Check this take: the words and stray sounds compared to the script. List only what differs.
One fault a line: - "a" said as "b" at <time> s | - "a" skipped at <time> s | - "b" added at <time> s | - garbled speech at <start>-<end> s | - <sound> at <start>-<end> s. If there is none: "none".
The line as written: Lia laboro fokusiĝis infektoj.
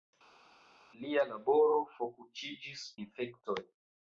none